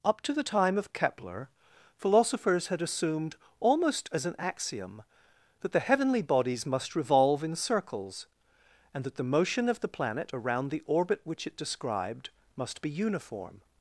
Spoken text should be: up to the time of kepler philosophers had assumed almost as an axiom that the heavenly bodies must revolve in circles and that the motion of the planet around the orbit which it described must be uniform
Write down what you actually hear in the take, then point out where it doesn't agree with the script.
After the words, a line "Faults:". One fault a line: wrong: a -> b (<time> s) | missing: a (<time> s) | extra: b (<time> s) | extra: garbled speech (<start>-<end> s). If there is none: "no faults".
up to the time of kepler philosophers had assumed almost as an axiom that the heavenly bodies must revolve in circles and that the motion of the planet around the orbit which it described must be uniform
Faults:
no faults